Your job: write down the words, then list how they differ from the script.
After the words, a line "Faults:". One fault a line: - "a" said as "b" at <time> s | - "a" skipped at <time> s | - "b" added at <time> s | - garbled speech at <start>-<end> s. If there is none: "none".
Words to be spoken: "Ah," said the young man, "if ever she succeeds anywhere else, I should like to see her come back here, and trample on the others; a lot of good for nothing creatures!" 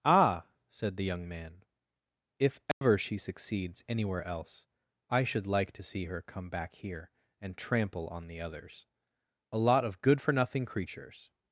"Ah," said the young man, "if ever she succeeds anywhere else, I should like to see her come back here, and trample on the others; a lot of good for nothing creatures!"
Faults:
none